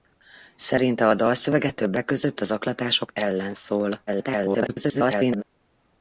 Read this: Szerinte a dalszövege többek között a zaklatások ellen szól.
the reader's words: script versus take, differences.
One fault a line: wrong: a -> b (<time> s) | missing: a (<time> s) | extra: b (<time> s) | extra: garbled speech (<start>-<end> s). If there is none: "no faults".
extra: garbled speech (4.1-5.4 s)